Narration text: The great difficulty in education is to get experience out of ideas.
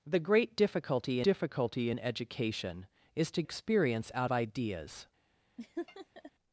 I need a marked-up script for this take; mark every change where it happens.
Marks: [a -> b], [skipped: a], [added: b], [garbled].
The great difficulty [added: difficulty] in education is to [skipped: get] experience out [skipped: of] ideas.